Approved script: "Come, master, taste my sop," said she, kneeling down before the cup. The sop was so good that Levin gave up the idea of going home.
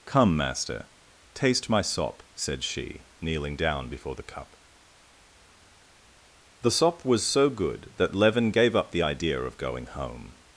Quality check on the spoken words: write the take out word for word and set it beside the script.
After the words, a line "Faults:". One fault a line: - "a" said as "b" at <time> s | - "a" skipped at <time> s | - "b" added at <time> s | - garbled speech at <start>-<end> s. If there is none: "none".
"Come, master, taste my sop," said she, kneeling down before the cup. The sop was so good that Levin gave up the idea of going home.
Faults:
none